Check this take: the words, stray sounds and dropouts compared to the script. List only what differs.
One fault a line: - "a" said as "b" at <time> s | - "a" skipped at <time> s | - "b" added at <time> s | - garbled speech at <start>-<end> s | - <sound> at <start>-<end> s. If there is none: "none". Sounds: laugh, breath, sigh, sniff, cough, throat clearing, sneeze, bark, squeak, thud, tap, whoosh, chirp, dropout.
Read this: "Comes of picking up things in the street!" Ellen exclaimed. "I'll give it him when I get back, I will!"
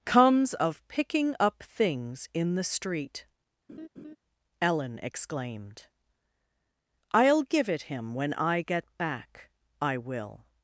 - laugh at 3.7-4.2 s